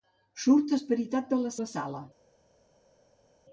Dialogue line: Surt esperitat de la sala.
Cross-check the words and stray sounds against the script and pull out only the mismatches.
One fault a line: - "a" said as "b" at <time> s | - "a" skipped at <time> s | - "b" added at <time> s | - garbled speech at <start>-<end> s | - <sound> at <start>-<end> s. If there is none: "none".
- "la" added at 1.6 s